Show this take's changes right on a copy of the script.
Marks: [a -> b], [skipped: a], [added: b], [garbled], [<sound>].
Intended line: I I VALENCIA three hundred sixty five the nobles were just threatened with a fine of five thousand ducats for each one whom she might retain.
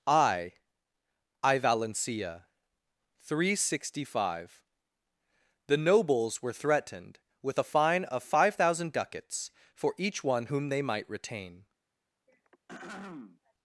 I I VALENCIA three hundred sixty five the nobles were [skipped: just] threatened with a fine of five thousand ducats for each one whom [she -> they] might retain. [throat clearing]